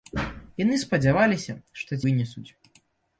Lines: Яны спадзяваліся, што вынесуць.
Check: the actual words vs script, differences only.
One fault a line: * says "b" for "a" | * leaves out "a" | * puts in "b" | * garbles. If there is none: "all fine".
all fine